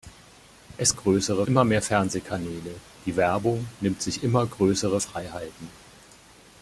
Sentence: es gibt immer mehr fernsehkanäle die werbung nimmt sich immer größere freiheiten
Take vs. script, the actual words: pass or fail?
fail